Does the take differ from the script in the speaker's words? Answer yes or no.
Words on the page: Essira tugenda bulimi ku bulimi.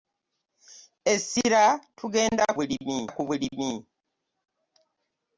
no